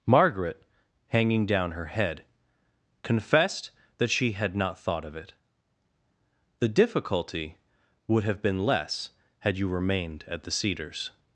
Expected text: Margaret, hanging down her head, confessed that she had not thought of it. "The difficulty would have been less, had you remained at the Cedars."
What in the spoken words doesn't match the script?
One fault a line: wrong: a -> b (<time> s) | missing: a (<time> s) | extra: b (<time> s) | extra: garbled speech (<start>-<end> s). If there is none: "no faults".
no faults